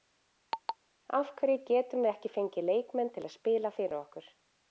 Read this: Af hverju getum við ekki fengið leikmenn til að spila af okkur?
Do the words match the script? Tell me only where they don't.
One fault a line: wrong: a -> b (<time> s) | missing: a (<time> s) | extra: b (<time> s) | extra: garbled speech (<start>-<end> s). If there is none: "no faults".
wrong: af -> fyrir (3.8 s)